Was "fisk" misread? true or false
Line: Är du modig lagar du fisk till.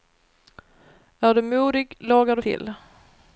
true